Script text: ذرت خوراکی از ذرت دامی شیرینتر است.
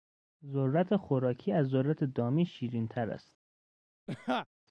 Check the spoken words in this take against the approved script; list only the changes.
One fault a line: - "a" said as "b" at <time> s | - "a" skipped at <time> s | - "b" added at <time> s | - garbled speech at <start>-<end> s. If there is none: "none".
none